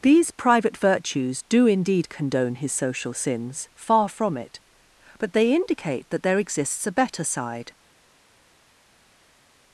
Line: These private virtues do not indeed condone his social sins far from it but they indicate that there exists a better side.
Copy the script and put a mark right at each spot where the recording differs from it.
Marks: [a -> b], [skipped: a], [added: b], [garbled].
These private virtues do [skipped: not] indeed condone his social sins far from it but they indicate that there exists a better side.